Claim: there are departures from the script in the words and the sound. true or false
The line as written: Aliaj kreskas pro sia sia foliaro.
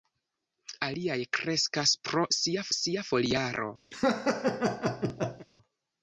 true